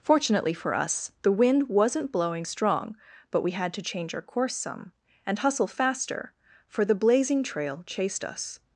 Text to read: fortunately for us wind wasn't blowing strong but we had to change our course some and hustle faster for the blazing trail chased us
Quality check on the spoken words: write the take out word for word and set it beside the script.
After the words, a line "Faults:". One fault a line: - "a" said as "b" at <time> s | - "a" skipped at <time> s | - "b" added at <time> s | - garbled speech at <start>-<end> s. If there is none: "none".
fortunately for us the wind wasn't blowing strong but we had to change our course some and hustle faster for the blazing trail chased us
Faults:
- "the" added at 1.2 s